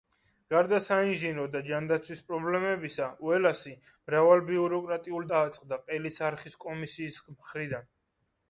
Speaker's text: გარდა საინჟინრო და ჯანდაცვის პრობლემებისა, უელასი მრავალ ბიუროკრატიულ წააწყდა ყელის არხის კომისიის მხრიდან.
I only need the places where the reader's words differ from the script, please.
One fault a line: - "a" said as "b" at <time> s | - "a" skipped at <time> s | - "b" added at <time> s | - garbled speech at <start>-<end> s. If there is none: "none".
none